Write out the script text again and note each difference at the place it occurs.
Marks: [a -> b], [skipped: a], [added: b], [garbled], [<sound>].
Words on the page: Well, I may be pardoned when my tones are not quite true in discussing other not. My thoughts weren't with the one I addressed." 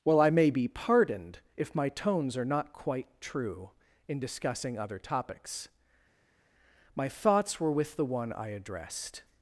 Well, I may be pardoned [when -> if] my tones are not quite true in discussing other [not. -> topics] My thoughts [weren't -> were] with the one I addressed."